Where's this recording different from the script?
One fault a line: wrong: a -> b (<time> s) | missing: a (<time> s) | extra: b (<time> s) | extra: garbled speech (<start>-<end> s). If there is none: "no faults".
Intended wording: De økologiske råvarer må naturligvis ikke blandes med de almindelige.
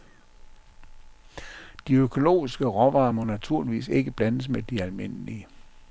no faults